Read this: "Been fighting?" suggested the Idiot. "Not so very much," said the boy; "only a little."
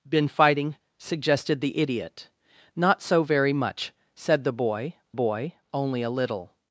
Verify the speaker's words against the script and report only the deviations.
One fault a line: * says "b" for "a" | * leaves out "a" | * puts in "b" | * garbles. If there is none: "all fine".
* puts in "boy"